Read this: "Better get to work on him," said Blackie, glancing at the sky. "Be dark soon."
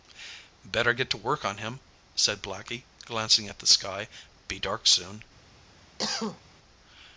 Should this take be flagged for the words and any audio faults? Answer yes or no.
yes